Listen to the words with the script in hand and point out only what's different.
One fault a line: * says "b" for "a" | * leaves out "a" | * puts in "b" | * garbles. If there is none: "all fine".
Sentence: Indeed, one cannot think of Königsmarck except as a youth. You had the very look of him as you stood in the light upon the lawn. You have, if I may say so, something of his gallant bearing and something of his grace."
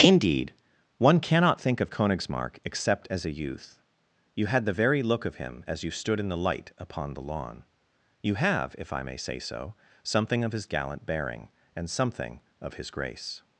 all fine